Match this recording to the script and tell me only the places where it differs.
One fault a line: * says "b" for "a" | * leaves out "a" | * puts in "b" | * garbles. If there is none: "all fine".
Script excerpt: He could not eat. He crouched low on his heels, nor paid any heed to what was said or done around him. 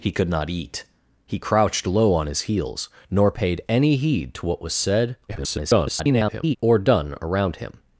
* garbles